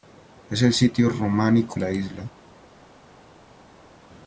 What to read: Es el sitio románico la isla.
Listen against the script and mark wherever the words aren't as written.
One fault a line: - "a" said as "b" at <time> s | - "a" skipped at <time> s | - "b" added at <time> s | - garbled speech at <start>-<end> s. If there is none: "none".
none